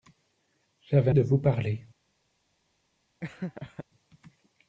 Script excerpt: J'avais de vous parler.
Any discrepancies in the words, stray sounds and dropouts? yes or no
yes